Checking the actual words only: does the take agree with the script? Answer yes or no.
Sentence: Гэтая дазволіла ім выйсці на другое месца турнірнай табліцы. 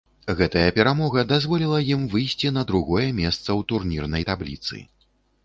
no